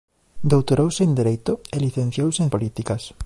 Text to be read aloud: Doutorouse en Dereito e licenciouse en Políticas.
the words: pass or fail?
pass